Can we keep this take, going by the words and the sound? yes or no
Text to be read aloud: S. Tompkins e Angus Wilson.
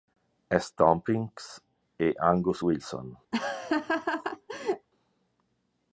no